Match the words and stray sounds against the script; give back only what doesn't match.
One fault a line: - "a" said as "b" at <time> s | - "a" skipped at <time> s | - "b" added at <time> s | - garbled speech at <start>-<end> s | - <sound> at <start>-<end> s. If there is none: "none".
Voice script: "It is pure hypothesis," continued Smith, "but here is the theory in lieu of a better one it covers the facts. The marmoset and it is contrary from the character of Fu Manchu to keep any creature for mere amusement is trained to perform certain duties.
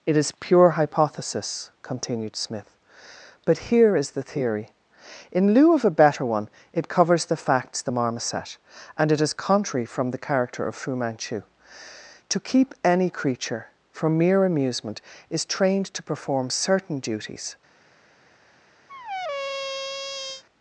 - squeak at 18.9-20.4 s